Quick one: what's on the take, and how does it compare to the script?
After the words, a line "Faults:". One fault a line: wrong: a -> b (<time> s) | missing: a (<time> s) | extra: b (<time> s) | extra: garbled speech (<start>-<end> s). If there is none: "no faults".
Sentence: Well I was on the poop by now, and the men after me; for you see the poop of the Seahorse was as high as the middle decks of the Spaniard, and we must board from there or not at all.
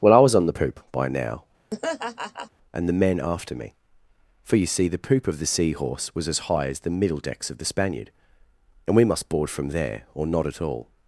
Well I was on the poop by now, and the men after me; for you see the poop of the Seahorse was as high as the middle decks of the Spaniard, and we must board from there or not at all.
Faults:
no faults